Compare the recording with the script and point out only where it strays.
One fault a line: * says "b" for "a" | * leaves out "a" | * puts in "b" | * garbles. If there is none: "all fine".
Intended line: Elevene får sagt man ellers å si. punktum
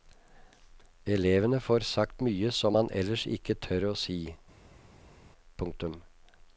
* puts in "mye som"
* puts in "ikke tør"